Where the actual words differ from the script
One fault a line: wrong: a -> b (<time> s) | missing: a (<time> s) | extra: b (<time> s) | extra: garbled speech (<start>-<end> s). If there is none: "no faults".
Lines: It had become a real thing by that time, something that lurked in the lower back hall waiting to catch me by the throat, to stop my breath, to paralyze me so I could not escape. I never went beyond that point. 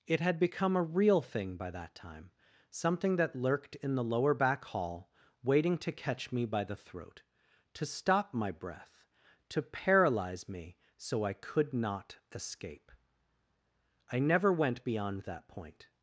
no faults